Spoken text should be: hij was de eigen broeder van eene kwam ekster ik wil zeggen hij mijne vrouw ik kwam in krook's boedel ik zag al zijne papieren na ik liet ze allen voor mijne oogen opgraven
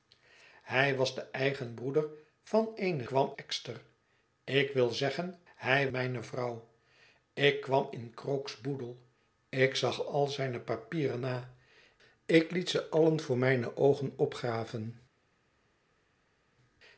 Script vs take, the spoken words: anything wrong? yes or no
no